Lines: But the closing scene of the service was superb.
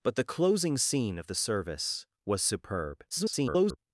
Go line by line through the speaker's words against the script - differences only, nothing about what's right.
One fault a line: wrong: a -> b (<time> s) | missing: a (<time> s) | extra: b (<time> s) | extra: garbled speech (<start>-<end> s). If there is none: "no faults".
extra: garbled speech (3.1-3.8 s)